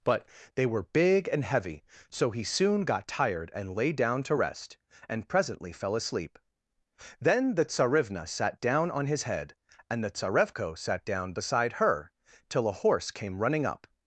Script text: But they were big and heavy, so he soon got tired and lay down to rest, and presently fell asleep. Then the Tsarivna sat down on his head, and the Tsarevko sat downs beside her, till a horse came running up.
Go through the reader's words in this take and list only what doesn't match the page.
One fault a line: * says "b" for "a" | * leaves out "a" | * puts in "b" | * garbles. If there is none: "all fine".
* says "down" for "downs"